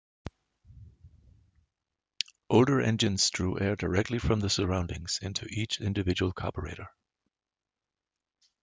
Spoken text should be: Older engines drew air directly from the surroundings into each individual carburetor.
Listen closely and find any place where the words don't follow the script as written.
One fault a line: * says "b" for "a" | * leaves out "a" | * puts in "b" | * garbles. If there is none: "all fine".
all fine